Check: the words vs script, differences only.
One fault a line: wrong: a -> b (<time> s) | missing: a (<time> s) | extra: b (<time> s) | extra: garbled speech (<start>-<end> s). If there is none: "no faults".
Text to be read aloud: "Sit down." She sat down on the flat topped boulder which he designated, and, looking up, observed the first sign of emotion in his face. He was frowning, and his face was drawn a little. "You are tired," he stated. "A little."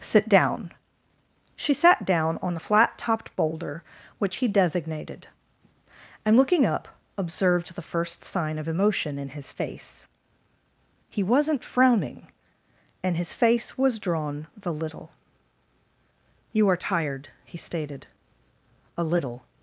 wrong: was -> wasn't (11.2 s)
wrong: a -> the (14.5 s)